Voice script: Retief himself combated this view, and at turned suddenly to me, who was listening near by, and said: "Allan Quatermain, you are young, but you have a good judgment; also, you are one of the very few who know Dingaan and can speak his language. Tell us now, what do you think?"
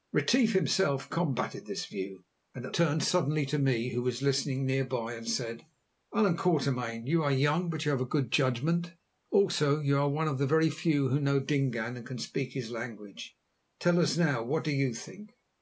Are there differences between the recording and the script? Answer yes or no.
no